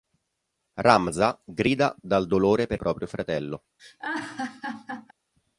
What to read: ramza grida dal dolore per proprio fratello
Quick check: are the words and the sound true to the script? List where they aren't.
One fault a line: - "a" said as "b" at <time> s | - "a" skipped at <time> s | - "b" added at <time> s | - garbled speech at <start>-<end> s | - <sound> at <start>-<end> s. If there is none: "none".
- laugh at 3.8-5.1 s